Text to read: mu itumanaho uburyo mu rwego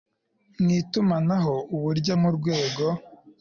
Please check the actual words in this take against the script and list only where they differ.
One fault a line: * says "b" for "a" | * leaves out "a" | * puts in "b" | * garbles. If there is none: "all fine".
all fine